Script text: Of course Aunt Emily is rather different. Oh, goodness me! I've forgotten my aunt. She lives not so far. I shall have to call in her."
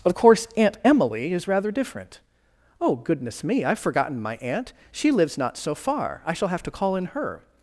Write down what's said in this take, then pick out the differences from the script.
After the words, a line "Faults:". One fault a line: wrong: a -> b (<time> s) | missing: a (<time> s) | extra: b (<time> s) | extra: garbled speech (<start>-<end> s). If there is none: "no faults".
Of course Aunt Emily is rather different. Oh, goodness me! I've forgotten my aunt. She lives not so far. I shall have to call in her."
Faults:
no faults